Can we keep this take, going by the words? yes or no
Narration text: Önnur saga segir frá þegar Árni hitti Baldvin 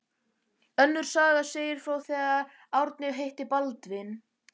yes